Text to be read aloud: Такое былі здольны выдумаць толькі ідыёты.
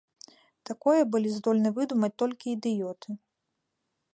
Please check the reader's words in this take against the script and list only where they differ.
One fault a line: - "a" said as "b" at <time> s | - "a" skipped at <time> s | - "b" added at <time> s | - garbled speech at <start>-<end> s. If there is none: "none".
none